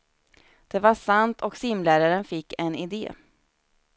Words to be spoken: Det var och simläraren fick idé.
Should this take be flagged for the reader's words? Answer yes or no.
yes